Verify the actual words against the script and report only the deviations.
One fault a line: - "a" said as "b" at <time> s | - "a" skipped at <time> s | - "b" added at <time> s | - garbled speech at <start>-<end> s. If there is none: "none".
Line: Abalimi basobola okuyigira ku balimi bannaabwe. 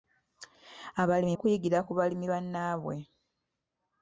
- "basobola" skipped at 1.3 s